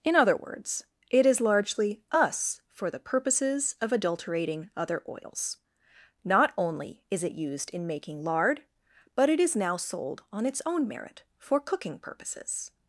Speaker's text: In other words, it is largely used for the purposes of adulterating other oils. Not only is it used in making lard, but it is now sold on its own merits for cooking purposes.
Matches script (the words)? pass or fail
fail